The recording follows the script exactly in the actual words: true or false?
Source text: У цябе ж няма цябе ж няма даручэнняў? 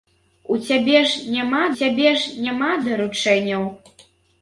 true